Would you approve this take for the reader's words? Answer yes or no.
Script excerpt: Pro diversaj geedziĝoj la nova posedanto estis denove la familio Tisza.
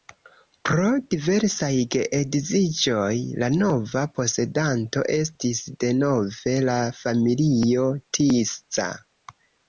yes